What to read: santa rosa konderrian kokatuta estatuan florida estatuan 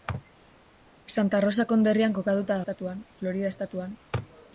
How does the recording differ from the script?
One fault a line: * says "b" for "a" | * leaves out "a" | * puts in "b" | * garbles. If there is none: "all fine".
all fine